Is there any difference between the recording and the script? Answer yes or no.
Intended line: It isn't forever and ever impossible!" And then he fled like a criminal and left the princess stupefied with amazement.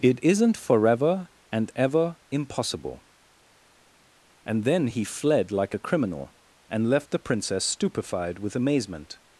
no